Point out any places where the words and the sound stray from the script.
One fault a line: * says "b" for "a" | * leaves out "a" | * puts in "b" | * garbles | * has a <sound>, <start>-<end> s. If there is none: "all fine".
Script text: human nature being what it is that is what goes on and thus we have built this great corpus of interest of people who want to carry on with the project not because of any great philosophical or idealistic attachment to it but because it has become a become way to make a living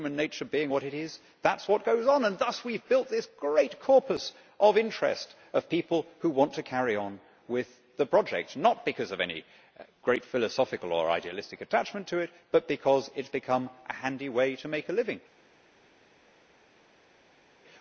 * says "handy" for "become"